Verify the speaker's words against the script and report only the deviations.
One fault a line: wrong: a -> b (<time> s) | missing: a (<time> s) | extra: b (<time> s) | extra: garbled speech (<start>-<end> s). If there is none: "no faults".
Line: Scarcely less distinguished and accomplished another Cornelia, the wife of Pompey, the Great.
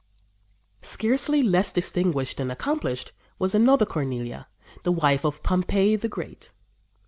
extra: was (3.4 s)